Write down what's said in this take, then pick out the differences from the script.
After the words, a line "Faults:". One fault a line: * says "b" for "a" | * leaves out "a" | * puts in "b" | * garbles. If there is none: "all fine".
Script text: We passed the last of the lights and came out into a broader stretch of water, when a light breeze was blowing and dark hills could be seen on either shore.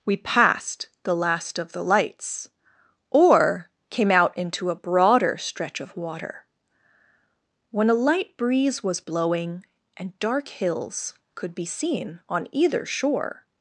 We passed the last of the lights or came out into a broader stretch of water, when a light breeze was blowing and dark hills could be seen on either shore.
Faults:
* says "or" for "and"